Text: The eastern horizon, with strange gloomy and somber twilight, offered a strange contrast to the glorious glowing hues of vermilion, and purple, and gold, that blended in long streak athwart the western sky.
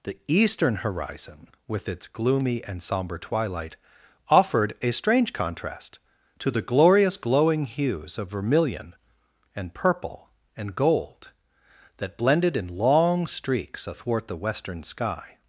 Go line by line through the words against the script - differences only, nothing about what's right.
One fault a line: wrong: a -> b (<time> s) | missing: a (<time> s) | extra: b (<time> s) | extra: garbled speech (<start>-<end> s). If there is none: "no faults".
wrong: strange -> its (1.9 s)
wrong: streak -> streaks (13.2 s)